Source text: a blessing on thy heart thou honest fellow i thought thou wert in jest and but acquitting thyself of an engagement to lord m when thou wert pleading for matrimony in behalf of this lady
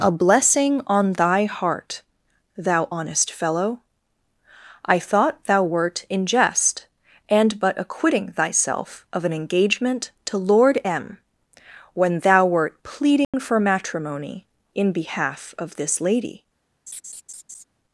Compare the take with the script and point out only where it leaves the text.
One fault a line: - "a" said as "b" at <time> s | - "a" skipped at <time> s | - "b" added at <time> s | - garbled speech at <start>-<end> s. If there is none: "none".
none